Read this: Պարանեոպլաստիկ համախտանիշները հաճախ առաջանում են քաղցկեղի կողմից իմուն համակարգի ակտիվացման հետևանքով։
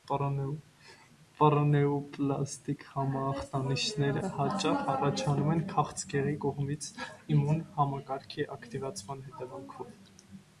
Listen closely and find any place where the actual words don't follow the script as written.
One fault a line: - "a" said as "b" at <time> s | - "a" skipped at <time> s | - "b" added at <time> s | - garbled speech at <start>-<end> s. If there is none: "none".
none